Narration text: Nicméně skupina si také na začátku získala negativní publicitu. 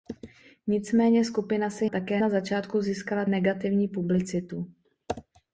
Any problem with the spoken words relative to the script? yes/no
no